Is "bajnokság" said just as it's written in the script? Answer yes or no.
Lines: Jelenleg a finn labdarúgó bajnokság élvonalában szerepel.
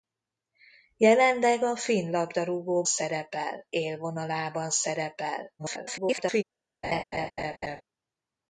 no